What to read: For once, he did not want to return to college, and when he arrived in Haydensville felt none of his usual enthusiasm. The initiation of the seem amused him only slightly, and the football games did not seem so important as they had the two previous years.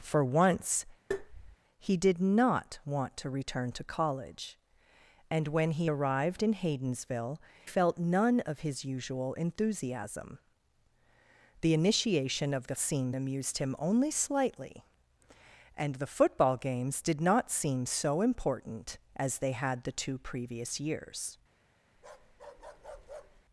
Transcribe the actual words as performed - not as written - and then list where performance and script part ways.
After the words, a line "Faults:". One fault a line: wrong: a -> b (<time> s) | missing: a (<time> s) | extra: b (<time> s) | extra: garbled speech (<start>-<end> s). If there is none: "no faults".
For once, he did not want to return to college, and when he arrived in Haydensville felt none of his usual enthusiasm. The initiation of the seem amused him only slightly, and the football games did not seem so important as they had the two previous years.
Faults:
no faults